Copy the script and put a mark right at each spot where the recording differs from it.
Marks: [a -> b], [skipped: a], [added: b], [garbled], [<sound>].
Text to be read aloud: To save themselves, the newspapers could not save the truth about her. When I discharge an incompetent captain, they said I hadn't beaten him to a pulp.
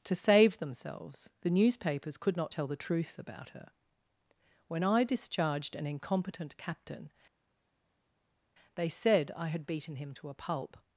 To save themselves, the newspapers could not [save -> tell] the truth about her. When I [discharge -> discharged] an incompetent captain, they said I [hadn't -> had] beaten him to a pulp.